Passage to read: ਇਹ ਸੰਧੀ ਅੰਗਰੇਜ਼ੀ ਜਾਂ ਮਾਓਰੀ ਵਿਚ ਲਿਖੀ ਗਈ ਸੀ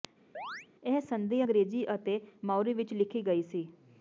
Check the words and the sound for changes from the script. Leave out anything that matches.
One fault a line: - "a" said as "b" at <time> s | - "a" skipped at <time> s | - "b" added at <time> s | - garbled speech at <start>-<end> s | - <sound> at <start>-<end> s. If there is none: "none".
- chirp at 0.3-0.7 s
- "ਜਾਂ" said as "ਅਤੇ" at 1.9 s